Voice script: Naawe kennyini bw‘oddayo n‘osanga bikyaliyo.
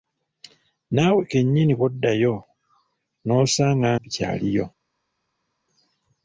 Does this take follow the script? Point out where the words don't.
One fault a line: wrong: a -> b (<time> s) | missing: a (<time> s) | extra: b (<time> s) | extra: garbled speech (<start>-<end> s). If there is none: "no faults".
no faults